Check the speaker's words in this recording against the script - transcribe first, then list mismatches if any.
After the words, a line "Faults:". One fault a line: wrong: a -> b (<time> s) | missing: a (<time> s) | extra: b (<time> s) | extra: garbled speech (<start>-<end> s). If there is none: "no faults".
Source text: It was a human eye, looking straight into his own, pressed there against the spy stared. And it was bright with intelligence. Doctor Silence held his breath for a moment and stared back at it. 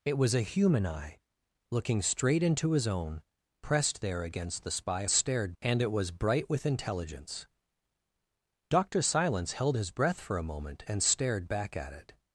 It was a human eye, looking straight into his own, pressed there against the spy stared. And it was bright with intelligence. Doctor Silence held his breath for a moment and stared back at it.
Faults:
no faults